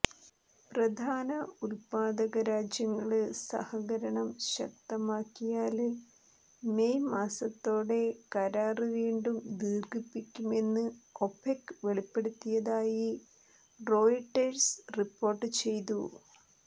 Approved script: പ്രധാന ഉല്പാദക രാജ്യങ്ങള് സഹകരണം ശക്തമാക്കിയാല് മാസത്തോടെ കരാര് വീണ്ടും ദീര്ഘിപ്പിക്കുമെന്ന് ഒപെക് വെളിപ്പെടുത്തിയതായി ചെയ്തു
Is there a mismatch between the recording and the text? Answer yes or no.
yes